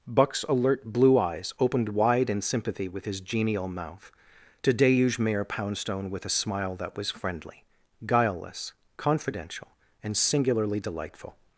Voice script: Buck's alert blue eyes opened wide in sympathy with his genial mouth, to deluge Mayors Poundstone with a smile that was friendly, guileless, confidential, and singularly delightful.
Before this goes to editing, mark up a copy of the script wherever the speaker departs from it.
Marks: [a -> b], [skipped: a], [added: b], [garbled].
Buck's alert blue eyes opened wide in sympathy with his genial mouth, to deluge [Mayors -> Mayor] Poundstone with a smile that was friendly, guileless, confidential, and singularly delightful.